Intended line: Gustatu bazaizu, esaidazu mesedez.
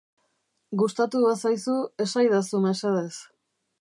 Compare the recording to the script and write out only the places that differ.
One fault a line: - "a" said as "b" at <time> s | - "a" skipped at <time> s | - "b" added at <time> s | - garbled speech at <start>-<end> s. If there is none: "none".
none